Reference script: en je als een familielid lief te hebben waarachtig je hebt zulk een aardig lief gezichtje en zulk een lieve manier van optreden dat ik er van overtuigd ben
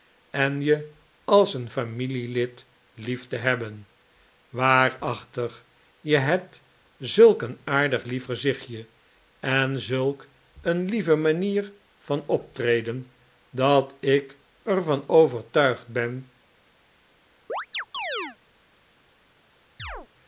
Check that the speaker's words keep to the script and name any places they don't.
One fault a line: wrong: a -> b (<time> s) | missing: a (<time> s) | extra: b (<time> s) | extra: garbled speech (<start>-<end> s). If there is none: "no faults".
no faults